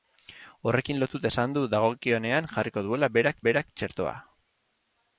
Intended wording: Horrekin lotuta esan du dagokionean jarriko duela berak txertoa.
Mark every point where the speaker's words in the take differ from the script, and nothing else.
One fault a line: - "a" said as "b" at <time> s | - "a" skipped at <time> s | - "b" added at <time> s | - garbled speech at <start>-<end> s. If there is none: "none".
- "berak" added at 3.5 s